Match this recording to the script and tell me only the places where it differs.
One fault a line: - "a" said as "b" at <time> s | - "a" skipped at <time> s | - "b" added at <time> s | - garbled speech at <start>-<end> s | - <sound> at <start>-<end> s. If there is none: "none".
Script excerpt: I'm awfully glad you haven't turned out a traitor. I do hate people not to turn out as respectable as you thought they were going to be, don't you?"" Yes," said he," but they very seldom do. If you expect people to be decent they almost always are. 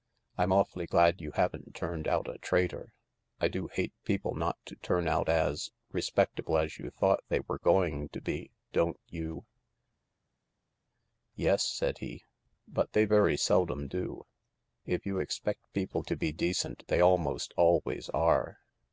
none